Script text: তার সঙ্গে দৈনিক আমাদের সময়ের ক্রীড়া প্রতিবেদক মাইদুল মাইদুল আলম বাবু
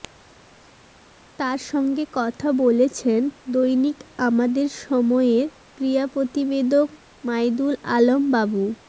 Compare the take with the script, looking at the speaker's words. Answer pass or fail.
fail